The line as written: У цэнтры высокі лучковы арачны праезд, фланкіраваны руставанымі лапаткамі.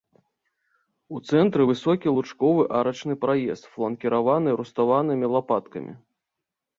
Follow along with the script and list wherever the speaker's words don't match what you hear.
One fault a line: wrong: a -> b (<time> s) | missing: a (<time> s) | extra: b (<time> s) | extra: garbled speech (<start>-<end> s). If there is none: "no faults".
no faults